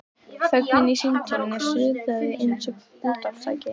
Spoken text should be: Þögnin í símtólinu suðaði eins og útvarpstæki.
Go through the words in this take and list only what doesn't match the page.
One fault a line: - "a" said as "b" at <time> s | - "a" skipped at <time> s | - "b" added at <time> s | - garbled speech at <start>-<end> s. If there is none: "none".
none